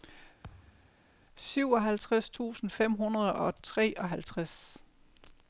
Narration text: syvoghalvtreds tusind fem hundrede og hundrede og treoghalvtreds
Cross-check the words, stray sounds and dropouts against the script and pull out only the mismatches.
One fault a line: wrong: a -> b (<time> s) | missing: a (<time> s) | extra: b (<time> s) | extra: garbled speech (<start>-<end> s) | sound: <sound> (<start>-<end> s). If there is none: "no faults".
sound: thud (0.4-1.0 s)
missing: hundrede og (3.6 s)